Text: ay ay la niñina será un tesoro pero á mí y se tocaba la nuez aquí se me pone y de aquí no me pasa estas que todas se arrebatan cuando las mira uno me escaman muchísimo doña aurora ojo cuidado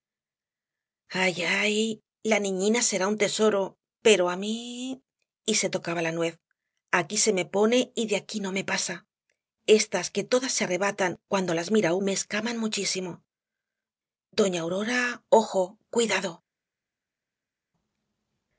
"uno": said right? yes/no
no